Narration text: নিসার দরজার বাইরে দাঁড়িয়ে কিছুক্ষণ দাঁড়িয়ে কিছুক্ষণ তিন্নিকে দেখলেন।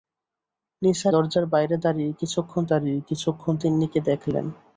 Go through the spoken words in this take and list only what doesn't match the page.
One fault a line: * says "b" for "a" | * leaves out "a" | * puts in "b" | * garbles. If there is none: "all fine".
all fine